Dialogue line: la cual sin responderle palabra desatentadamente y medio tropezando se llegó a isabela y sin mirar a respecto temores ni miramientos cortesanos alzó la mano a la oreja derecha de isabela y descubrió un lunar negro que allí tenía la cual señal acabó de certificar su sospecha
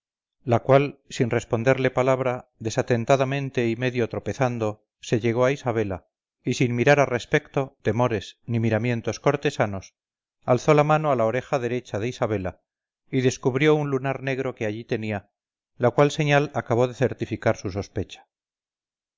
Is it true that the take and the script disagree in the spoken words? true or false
false